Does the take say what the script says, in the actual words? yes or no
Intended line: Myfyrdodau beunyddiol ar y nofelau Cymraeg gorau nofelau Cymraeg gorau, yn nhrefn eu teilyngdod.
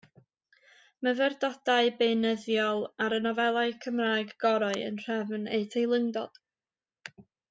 no